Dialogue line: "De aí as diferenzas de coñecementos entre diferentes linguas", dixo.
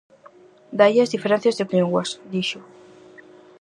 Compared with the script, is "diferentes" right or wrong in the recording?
wrong